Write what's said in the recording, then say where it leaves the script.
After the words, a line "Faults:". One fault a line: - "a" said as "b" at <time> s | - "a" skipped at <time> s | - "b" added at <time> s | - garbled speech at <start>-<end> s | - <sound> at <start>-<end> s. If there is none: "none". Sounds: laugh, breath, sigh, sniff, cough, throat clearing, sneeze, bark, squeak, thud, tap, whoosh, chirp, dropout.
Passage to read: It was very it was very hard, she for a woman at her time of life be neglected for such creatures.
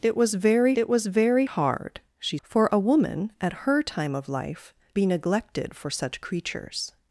It was very it was very hard, she for a woman at her time of life be neglected for such creatures.
Faults:
none